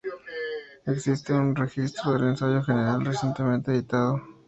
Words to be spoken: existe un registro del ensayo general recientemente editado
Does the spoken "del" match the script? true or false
true